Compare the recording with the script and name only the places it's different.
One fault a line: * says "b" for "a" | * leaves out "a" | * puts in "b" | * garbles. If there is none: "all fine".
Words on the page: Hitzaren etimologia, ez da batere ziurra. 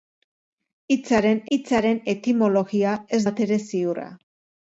* puts in "hitzaren"
* leaves out "da"